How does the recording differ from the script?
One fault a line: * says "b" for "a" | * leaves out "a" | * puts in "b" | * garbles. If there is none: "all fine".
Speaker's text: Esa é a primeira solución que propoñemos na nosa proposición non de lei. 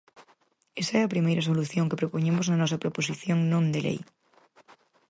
all fine